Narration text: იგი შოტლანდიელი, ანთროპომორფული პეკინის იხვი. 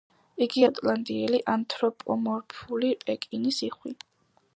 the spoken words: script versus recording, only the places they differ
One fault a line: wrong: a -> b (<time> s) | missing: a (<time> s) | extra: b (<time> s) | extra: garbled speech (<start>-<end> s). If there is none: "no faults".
no faults